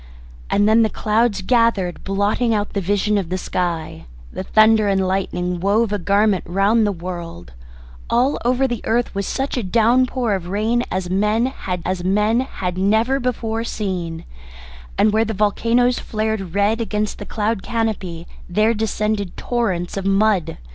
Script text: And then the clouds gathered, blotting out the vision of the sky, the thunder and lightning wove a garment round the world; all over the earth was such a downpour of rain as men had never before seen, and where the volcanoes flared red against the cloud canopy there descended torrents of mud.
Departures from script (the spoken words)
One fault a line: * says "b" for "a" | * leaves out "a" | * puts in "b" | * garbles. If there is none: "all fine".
* puts in "as men had"